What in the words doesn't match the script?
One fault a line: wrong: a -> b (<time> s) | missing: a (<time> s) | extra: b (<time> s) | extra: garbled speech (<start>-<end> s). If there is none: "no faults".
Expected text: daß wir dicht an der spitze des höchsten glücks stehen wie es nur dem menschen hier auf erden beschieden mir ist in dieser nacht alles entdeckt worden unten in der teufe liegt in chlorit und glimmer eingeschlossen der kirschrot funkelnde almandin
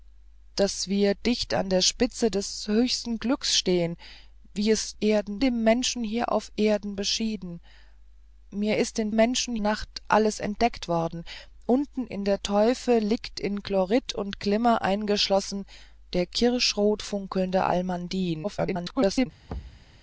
wrong: nur -> erden (5.0 s)
wrong: dieser -> menschen (9.1 s)
extra: garbled speech (18.4-19.3 s)